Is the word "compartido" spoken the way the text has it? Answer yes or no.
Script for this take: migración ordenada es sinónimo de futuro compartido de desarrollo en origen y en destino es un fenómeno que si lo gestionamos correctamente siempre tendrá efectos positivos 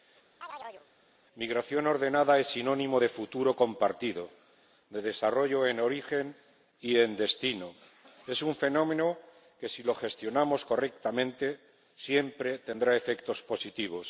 yes